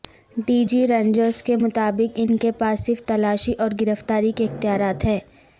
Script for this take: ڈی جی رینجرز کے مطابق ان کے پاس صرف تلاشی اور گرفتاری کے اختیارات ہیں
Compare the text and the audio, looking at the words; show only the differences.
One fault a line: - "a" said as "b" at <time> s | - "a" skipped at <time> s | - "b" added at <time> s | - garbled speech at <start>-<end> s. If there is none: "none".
none